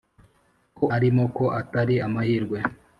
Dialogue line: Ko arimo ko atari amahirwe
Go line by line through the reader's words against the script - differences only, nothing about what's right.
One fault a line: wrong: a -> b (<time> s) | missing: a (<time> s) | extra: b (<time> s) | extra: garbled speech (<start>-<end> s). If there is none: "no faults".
no faults